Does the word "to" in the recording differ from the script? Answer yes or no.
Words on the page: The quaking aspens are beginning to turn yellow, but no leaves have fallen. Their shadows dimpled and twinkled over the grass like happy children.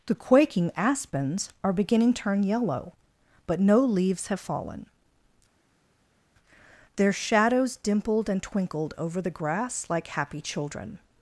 yes